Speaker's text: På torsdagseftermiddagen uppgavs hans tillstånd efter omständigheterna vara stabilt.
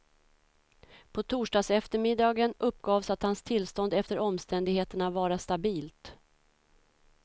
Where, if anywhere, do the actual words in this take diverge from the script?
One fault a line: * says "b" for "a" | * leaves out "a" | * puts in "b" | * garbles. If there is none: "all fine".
* puts in "att"